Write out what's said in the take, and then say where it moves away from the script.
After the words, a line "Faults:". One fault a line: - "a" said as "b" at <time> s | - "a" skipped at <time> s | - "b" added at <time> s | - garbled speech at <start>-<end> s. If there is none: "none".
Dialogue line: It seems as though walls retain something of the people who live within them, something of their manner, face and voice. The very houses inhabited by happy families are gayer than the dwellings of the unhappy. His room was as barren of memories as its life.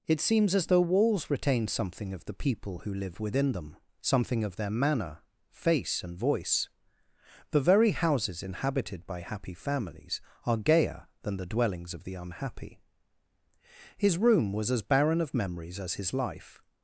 It seems as though walls retain something of the people who live within them, something of their manner, face and voice. The very houses inhabited by happy families are gayer than the dwellings of the unhappy. His room was as barren of memories as his life.
Faults:
- "its" said as "his" at 16.0 s